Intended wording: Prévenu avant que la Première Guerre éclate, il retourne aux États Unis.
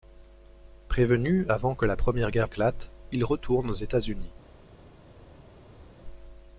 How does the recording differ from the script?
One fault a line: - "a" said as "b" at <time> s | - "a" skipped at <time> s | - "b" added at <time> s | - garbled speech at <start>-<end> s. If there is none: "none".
none